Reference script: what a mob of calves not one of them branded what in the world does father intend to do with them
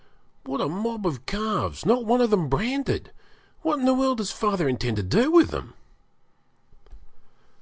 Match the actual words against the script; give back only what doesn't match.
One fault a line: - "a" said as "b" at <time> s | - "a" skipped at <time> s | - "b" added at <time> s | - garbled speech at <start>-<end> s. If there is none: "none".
none